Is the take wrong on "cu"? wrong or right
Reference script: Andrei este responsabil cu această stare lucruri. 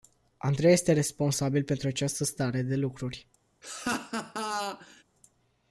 wrong